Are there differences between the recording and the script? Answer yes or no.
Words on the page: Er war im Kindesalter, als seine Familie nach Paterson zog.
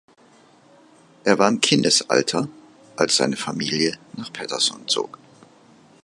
no